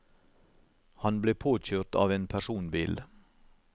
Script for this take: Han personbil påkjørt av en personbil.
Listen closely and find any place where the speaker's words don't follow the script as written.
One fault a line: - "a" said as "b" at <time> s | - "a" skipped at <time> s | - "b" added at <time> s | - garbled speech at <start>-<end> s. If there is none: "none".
- "personbil" said as "ble" at 1.2 s